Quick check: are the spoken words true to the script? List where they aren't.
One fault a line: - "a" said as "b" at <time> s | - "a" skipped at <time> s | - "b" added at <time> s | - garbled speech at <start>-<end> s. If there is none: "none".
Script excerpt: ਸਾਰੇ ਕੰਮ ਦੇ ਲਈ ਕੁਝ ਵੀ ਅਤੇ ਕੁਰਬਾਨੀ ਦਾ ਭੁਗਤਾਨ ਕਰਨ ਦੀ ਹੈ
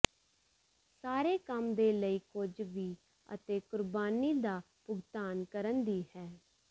none